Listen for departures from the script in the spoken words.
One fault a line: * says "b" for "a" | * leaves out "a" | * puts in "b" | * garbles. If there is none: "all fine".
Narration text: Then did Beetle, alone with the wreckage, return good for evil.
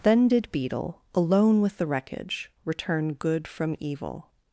* says "from" for "for"